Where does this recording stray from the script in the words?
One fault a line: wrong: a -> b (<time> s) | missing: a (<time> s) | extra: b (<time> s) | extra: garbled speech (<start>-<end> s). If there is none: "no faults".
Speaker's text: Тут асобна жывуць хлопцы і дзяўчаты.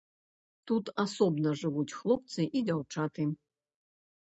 no faults